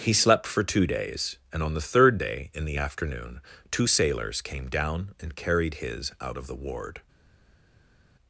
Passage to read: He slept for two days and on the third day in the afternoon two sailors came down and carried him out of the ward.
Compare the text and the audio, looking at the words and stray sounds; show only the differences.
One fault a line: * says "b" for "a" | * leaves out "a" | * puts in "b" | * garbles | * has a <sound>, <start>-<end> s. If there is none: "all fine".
* says "his" for "him"